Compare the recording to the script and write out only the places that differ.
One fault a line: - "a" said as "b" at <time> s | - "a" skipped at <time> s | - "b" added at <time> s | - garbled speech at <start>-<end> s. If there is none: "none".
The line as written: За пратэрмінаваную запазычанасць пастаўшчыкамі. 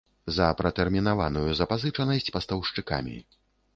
none